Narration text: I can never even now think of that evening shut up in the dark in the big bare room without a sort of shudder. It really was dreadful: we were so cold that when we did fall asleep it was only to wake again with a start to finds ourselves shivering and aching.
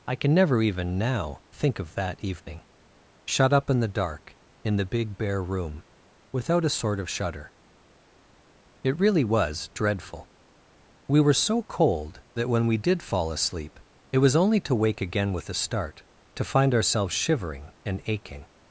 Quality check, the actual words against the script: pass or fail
fail